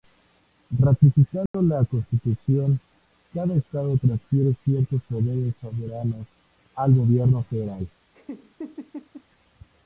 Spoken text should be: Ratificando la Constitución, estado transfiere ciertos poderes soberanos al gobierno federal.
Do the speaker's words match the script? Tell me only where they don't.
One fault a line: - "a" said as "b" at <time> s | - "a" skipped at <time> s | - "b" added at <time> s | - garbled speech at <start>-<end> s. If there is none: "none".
- "cada" added at 3.3 s